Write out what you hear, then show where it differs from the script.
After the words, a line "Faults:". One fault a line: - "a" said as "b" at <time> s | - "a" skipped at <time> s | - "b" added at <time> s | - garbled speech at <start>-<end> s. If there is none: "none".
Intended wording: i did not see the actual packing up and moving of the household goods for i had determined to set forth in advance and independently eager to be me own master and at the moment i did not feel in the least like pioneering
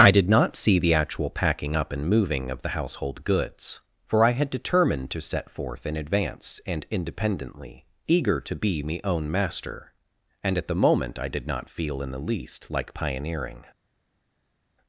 i did not see the actual packing up and moving of the household goods for i had determined to set forth in advance and independently eager to be me own master and at the moment i did not feel in the least like pioneering
Faults:
none